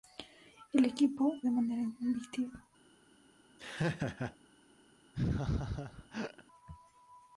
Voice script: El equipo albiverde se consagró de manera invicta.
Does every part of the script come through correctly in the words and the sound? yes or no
no